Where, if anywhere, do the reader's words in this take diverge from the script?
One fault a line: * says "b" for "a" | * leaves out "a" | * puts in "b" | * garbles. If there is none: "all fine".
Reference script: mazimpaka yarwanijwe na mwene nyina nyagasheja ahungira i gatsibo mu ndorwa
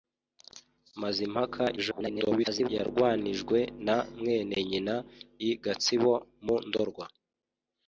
* garbles
* leaves out "nyagasheja ahungira"